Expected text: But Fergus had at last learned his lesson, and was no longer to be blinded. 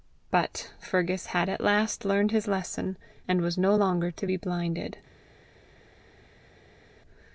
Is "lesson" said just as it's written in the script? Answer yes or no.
yes